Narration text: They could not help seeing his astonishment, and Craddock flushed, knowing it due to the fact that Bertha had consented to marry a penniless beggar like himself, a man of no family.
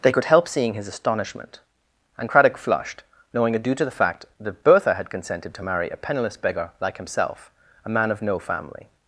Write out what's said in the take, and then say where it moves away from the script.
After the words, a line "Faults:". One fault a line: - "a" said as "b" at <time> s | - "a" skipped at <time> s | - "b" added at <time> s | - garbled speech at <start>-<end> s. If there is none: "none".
They could help seeing his astonishment, and Craddock flushed, knowing it due to the fact that Bertha had consented to marry a penniless beggar like himself, a man of no family.
Faults:
- "not" skipped at 0.2 s